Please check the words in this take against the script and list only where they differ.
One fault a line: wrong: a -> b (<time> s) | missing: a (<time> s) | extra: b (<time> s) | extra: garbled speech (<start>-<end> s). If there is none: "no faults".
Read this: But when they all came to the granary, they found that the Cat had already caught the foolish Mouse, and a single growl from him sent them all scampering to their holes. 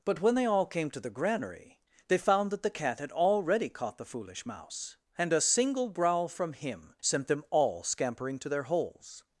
no faults